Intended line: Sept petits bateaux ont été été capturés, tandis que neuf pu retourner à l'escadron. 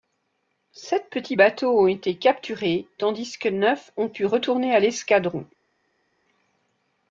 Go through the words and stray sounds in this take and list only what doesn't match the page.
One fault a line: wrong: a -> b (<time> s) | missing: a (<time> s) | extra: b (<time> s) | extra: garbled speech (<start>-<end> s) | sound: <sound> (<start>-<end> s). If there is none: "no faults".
missing: été (2.1 s)
extra: ont (3.9 s)